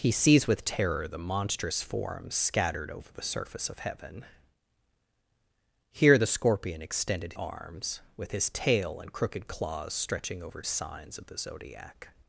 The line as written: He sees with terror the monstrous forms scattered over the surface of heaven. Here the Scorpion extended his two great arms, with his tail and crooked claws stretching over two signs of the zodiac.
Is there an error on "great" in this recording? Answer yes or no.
yes